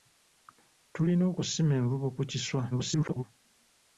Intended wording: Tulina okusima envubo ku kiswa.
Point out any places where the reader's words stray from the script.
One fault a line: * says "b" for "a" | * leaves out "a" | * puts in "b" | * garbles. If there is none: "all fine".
* garbles